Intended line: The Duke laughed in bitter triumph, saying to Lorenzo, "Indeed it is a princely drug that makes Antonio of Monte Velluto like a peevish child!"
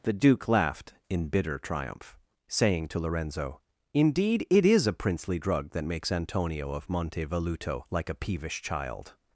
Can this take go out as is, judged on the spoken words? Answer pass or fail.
pass